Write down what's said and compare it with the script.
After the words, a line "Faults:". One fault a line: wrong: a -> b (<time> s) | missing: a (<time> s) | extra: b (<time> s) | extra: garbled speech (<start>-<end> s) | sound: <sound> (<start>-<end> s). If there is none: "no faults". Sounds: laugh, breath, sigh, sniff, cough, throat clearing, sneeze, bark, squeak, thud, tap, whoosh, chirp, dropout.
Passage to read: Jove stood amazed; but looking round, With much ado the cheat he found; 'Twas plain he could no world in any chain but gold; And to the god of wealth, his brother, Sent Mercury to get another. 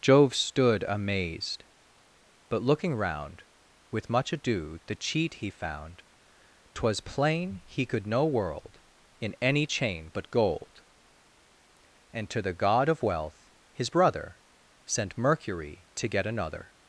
Jove stood amazed; but looking round, With much ado the cheat he found; 'Twas plain he could no world in any chain but gold; And to the god of wealth, his brother, Sent Mercury to get another.
Faults:
no faults